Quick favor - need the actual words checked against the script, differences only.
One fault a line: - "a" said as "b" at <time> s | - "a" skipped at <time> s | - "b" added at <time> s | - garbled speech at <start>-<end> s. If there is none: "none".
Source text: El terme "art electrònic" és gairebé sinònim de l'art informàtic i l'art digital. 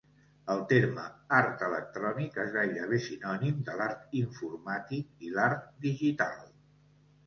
none